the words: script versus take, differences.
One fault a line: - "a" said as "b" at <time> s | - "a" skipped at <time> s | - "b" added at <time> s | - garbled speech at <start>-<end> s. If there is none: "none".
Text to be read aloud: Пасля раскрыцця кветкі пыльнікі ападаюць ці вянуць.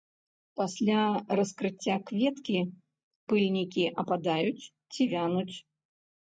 none